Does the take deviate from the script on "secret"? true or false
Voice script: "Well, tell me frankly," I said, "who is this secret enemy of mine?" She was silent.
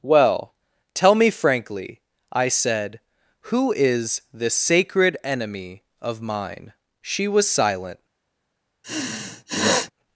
true